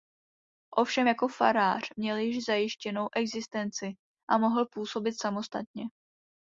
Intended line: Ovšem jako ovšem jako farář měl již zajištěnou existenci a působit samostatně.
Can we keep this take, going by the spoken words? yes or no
no